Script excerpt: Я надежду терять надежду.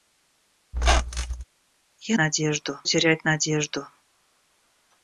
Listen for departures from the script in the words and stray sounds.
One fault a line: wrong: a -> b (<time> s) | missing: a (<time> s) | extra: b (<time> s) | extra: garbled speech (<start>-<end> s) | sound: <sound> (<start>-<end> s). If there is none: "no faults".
sound: squeak (0.7-1.4 s)